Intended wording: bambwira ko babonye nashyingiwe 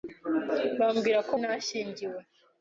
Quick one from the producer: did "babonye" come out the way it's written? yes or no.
no